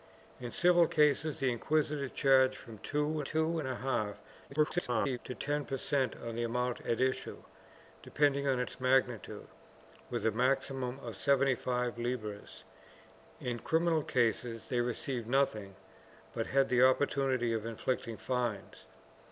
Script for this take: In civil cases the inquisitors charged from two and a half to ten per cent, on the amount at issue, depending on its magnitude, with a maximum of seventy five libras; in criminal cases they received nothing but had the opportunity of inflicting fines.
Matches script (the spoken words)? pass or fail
fail